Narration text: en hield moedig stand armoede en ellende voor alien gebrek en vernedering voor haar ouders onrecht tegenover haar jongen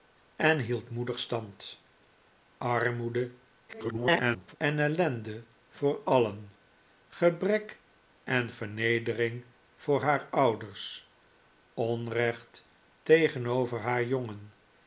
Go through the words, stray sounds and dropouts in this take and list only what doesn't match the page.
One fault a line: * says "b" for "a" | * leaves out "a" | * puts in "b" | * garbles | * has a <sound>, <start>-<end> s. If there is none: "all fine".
* garbles